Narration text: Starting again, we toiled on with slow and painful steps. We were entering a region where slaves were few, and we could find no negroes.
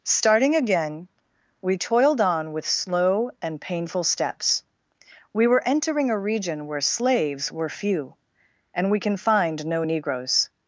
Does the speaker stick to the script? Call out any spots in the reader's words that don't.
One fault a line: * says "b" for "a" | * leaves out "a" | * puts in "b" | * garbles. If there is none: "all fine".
* says "can" for "could"